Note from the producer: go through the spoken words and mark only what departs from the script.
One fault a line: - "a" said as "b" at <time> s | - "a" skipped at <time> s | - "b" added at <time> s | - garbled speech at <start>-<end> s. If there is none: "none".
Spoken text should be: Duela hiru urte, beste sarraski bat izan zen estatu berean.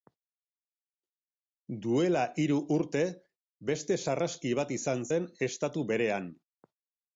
none